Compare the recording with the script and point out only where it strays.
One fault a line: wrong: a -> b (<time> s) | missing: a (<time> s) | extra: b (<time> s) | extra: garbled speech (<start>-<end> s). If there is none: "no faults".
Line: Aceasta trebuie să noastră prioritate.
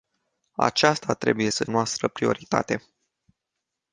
no faults